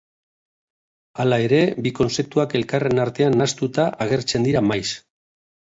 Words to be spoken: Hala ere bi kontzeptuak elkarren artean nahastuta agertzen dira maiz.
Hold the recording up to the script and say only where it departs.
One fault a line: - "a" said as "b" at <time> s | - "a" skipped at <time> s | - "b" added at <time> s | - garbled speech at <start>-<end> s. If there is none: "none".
none